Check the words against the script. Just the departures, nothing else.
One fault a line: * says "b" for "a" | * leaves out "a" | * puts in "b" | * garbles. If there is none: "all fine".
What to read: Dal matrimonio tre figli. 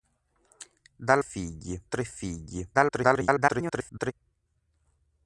* says "figli" for "matrimonio"
* garbles